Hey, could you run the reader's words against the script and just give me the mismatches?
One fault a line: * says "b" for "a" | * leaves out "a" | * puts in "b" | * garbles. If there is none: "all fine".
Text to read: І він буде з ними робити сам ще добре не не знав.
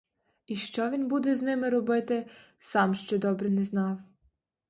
* puts in "що"
* leaves out "не"